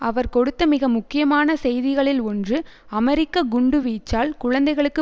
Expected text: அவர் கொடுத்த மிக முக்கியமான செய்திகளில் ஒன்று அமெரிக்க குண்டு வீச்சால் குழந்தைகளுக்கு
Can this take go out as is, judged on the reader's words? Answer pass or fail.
pass